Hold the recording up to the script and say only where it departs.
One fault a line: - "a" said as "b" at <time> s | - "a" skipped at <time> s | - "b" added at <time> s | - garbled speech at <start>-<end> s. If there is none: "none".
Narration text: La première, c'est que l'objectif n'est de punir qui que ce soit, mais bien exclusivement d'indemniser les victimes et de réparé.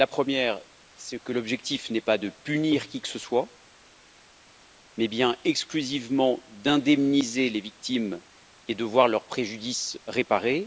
- "pas" added at 2.0 s
- "voir leur préjudice" added at 8.8 s